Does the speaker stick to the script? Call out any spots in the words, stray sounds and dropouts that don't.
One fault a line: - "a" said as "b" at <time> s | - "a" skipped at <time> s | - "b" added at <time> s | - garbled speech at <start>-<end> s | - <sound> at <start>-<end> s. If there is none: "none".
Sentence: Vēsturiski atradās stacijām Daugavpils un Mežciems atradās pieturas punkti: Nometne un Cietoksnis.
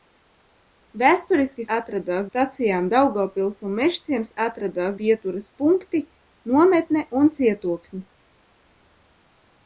none